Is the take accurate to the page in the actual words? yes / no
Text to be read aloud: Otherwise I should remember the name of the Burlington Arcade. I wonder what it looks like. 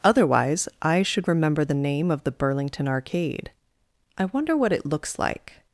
yes